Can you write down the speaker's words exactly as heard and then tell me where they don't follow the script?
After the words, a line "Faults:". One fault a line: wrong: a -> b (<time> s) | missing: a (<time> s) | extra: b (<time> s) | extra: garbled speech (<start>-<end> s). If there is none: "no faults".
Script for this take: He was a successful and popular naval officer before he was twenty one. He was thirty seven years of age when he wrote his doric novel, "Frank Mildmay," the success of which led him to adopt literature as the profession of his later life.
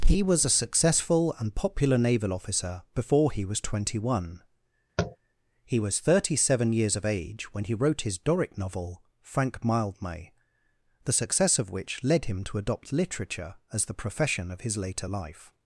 He was a successful and popular naval officer before he was twenty one. He was thirty seven years of age when he wrote his doric novel, "Frank Mildmay," the success of which led him to adopt literature as the profession of his later life.
Faults:
no faults